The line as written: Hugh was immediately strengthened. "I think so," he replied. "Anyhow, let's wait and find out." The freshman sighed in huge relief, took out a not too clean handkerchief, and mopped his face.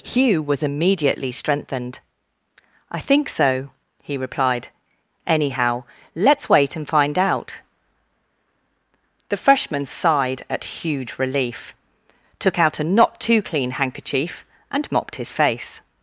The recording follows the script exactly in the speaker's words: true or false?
false